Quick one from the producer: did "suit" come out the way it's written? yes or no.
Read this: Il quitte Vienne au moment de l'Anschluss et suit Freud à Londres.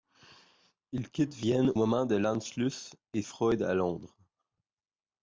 no